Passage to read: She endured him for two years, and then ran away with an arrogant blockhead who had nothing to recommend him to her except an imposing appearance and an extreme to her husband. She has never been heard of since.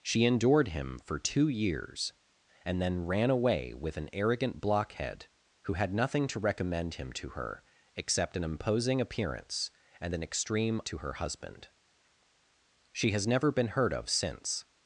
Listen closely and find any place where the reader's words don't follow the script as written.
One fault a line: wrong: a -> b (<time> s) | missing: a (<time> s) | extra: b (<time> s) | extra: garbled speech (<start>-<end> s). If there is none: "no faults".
no faults